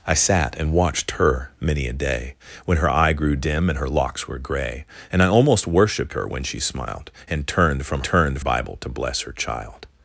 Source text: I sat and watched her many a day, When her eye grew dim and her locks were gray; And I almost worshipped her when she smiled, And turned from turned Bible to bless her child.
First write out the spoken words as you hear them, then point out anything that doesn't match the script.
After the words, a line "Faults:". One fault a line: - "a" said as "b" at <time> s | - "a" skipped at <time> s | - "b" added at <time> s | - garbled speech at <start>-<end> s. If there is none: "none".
I sat and watched her many a day, When her eye grew dim and her locks were gray; And I almost worshipped her when she smiled, And turned from turned Bible to bless her child.
Faults:
none